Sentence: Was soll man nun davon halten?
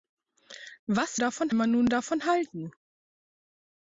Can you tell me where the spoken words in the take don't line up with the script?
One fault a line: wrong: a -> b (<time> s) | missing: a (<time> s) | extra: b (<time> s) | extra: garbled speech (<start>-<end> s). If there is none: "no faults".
wrong: soll -> davon (1.1 s)